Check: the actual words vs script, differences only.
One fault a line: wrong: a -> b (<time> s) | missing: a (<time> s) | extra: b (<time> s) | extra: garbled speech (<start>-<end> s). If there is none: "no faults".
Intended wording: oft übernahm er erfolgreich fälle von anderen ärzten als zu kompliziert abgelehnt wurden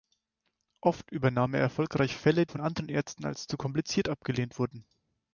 no faults